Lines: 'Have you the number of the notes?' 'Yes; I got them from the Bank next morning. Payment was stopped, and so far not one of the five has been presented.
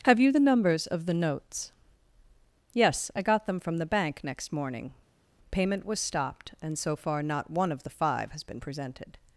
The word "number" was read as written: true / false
false